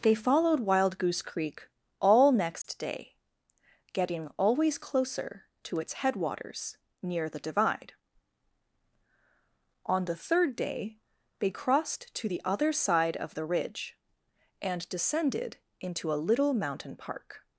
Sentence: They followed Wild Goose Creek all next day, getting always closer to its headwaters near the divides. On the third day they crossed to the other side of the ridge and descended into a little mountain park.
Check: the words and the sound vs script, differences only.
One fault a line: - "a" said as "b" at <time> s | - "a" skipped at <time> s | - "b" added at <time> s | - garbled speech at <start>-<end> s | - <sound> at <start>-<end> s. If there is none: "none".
- dropout at 2.6-2.6 s
- "divides" said as "divide" at 7.4 s